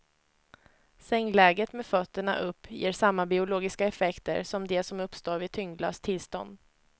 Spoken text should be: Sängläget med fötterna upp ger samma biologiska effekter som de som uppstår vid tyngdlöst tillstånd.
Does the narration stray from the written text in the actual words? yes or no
no